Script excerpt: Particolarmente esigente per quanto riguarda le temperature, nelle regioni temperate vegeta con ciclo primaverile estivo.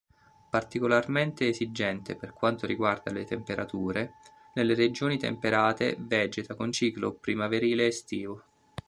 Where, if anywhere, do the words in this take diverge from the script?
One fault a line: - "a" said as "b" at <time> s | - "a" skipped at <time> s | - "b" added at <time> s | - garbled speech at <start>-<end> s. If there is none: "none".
none